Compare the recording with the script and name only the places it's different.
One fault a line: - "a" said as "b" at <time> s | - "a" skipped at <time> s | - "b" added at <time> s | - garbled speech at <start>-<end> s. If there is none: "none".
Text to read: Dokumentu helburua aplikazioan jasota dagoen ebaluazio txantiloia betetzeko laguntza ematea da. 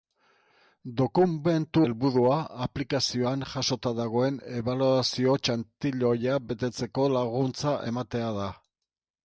none